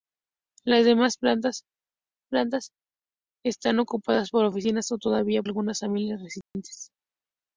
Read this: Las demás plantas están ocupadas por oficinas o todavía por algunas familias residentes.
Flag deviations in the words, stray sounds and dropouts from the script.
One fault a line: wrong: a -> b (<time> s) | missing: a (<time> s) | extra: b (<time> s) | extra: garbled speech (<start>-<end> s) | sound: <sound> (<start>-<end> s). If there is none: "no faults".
extra: plantas (2.3 s)
missing: por (5.4 s)
sound: dropout (6.4-6.5 s)